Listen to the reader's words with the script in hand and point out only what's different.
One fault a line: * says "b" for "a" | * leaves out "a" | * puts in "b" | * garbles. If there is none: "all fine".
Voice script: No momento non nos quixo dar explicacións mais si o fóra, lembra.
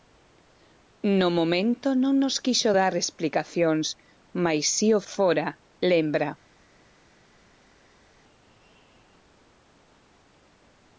all fine